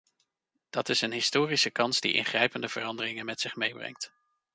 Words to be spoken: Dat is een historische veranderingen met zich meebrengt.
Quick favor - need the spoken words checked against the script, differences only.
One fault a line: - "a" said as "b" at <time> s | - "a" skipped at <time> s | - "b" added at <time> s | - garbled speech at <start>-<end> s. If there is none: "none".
- "kans die ingrijpende" added at 1.7 s